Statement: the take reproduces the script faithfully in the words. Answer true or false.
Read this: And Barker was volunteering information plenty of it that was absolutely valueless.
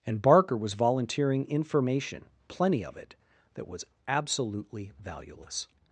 true